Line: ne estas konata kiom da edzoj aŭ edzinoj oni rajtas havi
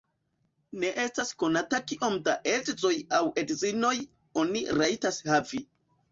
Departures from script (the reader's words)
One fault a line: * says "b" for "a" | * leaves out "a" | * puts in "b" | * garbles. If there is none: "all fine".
all fine